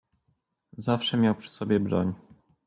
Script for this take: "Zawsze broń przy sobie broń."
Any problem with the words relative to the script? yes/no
yes